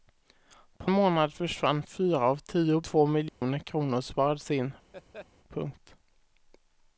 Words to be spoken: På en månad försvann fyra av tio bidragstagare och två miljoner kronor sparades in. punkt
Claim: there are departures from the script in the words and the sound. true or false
true